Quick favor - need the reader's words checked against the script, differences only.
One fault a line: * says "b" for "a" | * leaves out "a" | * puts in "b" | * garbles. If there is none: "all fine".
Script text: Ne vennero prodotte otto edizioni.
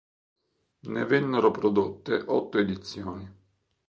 all fine